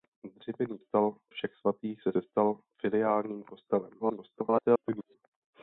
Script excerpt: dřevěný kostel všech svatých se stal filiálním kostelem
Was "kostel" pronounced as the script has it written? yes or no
no